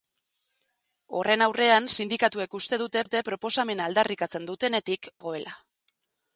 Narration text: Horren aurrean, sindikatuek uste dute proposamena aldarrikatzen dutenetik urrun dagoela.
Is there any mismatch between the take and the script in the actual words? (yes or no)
yes